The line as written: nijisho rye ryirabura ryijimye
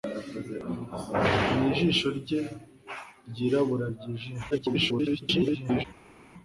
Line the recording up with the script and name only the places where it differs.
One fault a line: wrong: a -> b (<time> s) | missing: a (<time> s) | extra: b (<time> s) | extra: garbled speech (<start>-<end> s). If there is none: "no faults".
extra: garbled speech (4.5-5.8 s)